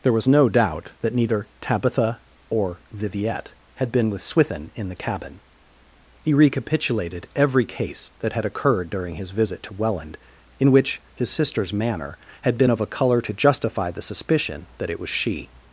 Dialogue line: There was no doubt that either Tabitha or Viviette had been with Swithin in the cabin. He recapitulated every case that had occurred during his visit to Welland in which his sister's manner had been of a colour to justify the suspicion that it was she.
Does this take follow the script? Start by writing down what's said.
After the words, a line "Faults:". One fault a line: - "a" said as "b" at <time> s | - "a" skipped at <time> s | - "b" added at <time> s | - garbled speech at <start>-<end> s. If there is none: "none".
There was no doubt that neither Tabitha or Viviette had been with Swithin in the cabin. He recapitulated every case that had occurred during his visit to Welland in which his sister's manner had been of a colour to justify the suspicion that it was she.
Faults:
- "either" said as "neither" at 1.1 s